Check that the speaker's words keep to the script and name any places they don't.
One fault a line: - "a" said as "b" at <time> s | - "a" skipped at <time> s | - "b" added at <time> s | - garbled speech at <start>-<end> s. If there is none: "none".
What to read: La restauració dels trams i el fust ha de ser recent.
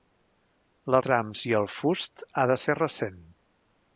- "restauració dels" skipped at 1.0 s